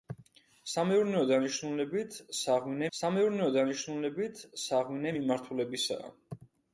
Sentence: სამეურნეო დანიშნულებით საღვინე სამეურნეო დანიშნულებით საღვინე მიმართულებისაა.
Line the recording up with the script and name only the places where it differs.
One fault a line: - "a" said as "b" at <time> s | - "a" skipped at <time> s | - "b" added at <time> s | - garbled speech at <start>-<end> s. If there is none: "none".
none